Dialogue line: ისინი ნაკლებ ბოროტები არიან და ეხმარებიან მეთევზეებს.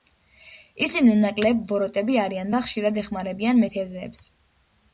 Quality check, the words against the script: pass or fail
fail